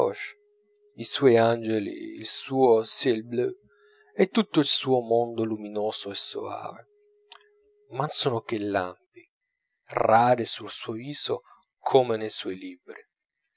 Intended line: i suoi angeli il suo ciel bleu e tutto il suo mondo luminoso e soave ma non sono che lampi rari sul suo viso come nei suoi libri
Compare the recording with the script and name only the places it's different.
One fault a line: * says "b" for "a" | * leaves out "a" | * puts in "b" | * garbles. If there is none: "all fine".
* leaves out "non"